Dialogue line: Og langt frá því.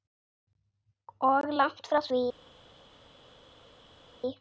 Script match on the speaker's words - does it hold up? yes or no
yes